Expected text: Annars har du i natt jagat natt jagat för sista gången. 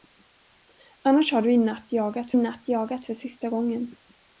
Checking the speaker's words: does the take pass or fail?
pass